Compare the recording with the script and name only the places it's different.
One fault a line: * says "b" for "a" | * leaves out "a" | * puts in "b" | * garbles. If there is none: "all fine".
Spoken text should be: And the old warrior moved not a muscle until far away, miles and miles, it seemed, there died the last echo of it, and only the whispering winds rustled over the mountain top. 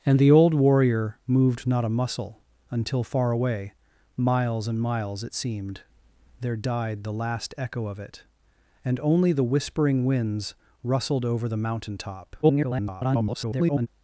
* garbles